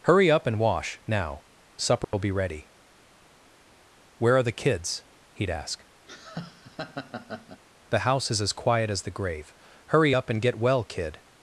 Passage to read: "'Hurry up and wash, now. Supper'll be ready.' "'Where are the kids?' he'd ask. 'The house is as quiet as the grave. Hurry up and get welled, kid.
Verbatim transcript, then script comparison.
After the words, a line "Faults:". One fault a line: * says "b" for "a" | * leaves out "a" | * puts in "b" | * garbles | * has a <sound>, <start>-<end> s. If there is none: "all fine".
"'Hurry up and wash, now. Supper'll be ready.' "'Where are the kids?' he'd ask. 'The house is as quiet as the grave. Hurry up and get well, kid.
Faults:
* has a dropout, 2.0-2.1 s
* has a laugh, 6.1-7.6 s
* says "well" for "welled"